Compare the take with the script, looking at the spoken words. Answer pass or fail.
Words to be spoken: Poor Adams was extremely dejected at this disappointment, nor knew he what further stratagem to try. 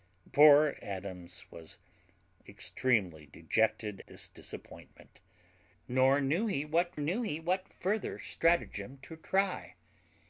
fail